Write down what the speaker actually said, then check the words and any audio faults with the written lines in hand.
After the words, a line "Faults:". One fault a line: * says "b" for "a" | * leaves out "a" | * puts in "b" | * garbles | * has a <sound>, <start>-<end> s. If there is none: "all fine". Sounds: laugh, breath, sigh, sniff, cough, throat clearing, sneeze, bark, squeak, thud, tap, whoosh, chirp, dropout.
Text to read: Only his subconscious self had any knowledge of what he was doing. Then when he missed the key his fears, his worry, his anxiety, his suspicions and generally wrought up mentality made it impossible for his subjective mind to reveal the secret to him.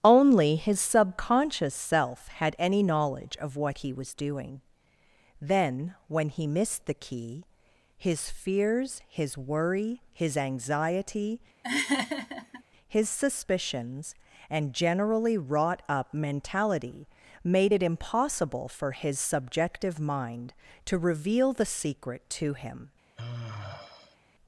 Only his subconscious self had any knowledge of what he was doing. Then when he missed the key his fears, his worry, his anxiety, his suspicions and generally wrought up mentality made it impossible for his subjective mind to reveal the secret to him.
Faults:
* has a laugh, 11.6-12.6 s
* has a sigh, 23.2-24.2 s